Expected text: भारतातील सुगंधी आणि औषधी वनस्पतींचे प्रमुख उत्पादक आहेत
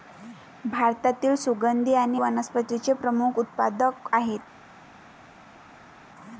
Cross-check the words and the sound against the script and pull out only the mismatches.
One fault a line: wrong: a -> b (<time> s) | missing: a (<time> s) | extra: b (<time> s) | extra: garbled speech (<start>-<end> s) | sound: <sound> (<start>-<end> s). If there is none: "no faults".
missing: औषधी (2.2 s)